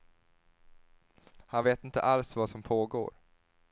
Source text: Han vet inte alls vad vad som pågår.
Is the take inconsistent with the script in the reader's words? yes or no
yes